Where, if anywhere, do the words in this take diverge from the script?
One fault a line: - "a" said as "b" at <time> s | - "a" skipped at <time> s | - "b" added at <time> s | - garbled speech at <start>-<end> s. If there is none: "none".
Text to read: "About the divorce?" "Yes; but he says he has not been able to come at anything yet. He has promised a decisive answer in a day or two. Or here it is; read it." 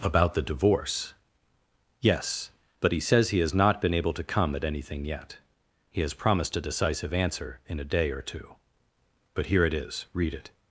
- "Or" said as "But" at 9.3 s